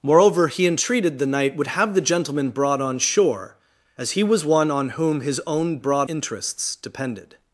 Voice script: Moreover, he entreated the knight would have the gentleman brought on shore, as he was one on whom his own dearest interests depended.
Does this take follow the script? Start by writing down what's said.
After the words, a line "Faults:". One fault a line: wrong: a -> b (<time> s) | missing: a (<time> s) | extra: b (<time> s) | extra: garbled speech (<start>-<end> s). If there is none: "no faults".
Moreover, he entreated the knight would have the gentleman brought on shore, as he was one on whom his own brought interests depended.
Faults:
wrong: dearest -> brought (5.8 s)